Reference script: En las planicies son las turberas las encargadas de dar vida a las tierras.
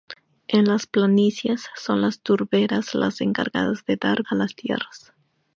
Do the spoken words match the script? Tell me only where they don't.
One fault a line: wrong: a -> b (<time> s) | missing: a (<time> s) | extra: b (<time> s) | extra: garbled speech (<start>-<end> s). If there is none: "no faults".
missing: vida (4.2 s)